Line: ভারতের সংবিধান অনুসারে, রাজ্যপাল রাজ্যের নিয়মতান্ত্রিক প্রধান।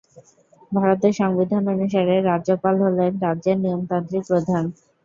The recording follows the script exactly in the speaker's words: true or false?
false